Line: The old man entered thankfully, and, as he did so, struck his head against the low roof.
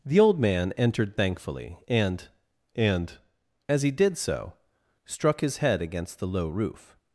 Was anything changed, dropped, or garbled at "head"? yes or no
no